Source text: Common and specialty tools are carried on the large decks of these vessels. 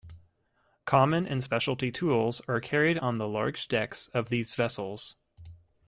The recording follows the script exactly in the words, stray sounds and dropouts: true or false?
true